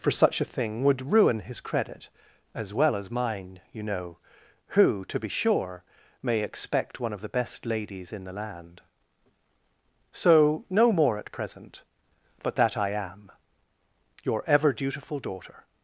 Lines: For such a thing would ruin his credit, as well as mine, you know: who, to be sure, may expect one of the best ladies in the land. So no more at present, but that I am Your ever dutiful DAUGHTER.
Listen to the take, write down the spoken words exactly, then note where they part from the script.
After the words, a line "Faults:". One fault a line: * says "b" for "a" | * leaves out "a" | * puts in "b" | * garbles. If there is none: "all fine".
For such a thing would ruin his credit, as well as mine, you know: who, to be sure, may expect one of the best ladies in the land. So no more at present, but that I am Your ever dutiful DAUGHTER.
Faults:
all fine